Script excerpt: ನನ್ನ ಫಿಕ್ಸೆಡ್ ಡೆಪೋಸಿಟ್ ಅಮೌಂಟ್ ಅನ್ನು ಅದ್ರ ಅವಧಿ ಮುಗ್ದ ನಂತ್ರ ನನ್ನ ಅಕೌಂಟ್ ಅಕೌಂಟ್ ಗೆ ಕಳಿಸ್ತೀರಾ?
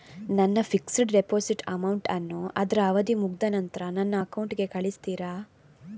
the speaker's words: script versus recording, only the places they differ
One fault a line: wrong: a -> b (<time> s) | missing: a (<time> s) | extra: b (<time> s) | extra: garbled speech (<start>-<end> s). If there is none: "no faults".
missing: ಅಕೌಂಟ್ (4.5 s)